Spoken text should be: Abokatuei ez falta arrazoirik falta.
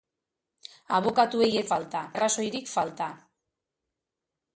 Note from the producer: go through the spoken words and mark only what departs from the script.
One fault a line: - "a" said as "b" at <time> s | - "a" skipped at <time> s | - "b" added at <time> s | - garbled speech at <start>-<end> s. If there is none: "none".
none